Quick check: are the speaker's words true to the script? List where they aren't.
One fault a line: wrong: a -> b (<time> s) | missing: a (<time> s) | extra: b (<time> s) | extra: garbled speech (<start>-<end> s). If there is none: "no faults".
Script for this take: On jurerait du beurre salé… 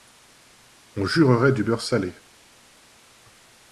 no faults